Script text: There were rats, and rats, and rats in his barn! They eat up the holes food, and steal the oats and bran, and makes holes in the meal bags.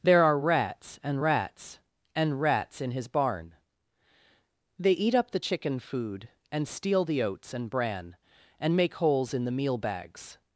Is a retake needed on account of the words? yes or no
yes